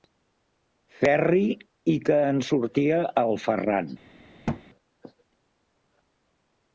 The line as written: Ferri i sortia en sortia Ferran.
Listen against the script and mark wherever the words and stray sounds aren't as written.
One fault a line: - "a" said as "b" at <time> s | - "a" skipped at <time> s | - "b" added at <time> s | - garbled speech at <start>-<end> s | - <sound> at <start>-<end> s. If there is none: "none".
- "sortia" said as "que" at 2.1 s
- "el" added at 3.2 s
- thud at 4.5-4.6 s